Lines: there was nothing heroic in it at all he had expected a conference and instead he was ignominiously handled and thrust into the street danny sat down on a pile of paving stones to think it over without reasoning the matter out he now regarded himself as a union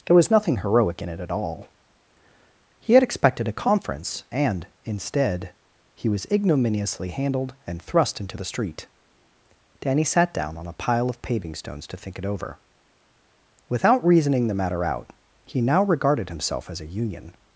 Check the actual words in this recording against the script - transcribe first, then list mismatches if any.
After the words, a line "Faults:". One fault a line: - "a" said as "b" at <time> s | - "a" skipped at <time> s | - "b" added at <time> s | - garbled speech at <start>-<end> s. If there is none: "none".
there was nothing heroic in it at all he had expected a conference and instead he was ignominiously handled and thrust into the street danny sat down on a pile of paving stones to think it over without reasoning the matter out he now regarded himself as a union
Faults:
none